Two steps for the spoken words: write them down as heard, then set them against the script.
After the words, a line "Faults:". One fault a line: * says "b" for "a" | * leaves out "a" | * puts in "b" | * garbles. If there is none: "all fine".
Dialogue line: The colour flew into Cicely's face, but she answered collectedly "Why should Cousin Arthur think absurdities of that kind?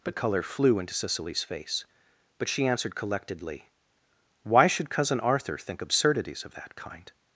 But color flew into Cicely's face, but she answered collectedly "Why should Cousin Arthur think absurdities of that kind?
Faults:
* says "But color" for "The colour"